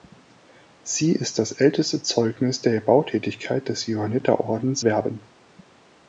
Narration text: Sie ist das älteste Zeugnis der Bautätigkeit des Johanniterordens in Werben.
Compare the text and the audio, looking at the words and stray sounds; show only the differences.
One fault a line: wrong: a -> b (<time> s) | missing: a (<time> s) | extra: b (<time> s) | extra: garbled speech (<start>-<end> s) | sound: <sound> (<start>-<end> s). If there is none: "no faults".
missing: in (4.8 s)